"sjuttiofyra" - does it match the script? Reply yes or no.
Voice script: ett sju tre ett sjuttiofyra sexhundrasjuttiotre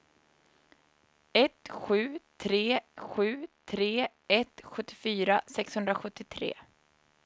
yes